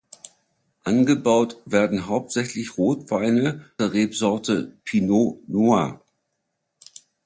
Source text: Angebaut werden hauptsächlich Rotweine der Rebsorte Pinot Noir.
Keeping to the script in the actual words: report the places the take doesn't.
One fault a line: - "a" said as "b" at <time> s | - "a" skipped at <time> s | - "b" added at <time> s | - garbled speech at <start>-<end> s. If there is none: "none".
none